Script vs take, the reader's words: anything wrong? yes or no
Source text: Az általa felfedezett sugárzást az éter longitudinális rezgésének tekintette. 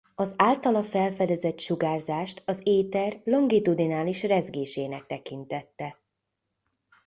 no